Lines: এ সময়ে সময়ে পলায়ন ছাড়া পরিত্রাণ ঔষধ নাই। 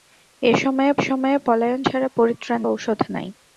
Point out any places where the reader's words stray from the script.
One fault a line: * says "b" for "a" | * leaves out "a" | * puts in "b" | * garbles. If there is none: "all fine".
all fine